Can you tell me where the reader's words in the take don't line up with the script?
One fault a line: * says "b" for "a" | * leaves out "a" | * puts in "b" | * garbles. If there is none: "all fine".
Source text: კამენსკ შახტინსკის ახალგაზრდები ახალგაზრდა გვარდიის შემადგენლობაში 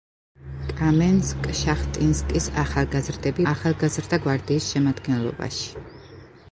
all fine